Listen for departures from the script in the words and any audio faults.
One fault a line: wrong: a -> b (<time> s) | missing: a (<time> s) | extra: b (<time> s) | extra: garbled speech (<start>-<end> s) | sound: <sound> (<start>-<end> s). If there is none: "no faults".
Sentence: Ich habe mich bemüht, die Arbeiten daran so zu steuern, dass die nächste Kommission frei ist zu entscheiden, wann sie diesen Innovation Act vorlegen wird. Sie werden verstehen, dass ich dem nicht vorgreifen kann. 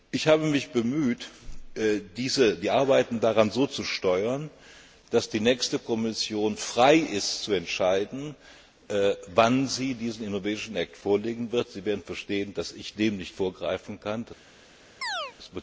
sound: chirp (15.0-15.3 s)